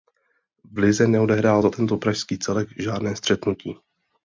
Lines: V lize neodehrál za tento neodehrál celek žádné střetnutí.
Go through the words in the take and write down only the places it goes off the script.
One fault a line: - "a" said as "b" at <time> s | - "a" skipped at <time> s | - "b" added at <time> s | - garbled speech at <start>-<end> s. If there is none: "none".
- "neodehrál" said as "pražský" at 2.0 s